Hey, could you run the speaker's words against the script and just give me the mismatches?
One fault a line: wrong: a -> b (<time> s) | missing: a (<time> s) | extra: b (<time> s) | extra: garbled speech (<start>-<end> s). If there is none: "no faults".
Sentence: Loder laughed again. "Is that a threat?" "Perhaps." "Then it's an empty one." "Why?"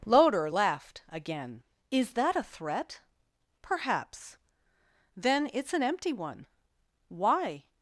no faults